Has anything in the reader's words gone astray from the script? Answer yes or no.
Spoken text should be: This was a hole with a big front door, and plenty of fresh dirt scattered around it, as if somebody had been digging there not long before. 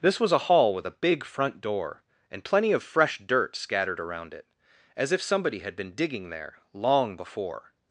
yes